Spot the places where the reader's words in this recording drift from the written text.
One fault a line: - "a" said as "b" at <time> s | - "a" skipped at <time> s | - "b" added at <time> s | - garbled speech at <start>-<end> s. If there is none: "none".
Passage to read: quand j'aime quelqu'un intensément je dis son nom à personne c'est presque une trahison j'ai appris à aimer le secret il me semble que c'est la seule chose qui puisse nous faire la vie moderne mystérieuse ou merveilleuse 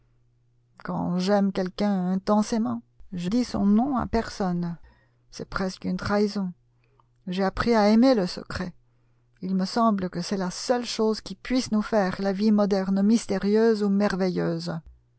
none